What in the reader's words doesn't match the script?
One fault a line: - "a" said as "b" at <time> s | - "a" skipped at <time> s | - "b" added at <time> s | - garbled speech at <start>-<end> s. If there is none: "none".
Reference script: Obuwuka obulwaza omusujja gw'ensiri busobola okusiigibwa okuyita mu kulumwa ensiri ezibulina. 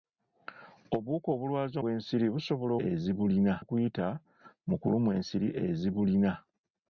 - "omusujja" skipped at 1.8 s
- "okusiigibwa" said as "ezibulina" at 2.9 s